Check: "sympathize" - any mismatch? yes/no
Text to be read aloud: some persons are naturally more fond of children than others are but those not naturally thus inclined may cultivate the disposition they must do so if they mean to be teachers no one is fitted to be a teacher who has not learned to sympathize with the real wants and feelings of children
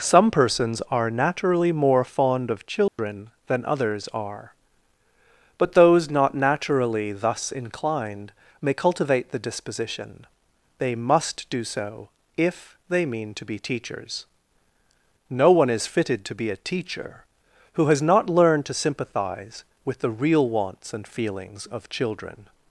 no